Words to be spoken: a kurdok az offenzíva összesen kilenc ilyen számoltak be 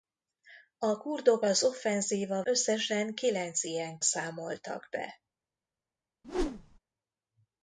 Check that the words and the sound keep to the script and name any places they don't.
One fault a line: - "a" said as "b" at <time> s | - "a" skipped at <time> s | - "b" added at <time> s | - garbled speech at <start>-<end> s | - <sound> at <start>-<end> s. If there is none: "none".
- whoosh at 6.2-6.8 s